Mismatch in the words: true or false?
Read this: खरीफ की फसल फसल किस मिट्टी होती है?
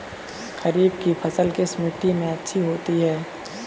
true